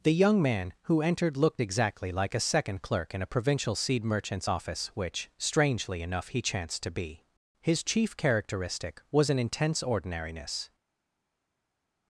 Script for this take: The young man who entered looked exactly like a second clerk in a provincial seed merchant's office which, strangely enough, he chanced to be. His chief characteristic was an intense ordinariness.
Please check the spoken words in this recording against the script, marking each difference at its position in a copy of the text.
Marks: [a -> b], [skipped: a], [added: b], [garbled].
The young man who entered looked exactly like a second clerk in a provincial seed merchant's office which, strangely enough, he chanced to be. His chief characteristic was an intense ordinariness.